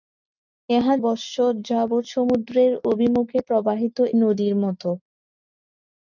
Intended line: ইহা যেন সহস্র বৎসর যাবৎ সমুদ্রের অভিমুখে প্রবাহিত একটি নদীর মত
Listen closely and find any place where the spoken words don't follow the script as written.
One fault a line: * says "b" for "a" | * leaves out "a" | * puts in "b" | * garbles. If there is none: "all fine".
* leaves out "যেন সহস্র"
* leaves out "একটি"